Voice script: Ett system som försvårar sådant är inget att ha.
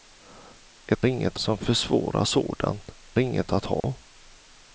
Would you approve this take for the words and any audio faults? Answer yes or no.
no